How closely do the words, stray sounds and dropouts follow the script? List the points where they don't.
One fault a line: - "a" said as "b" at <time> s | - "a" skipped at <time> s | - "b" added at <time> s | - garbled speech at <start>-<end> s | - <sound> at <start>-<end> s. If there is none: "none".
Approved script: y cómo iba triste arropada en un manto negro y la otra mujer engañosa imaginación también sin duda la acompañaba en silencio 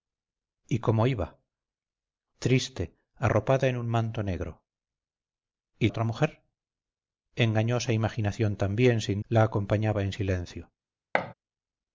- "la" skipped at 5.9 s
- "duda" skipped at 9.2 s
- thud at 11.1-11.3 s